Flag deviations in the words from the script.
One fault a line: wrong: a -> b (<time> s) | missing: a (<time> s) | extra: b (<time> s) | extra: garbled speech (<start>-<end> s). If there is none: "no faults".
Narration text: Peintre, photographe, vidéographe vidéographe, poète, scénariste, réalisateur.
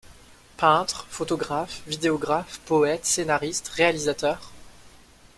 missing: vidéographe (2.6 s)